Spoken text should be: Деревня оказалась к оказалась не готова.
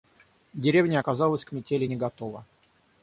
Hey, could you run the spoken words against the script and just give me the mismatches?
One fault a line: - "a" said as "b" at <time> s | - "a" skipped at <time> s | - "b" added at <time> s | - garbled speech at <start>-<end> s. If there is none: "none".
- "оказалась" said as "метели" at 1.5 s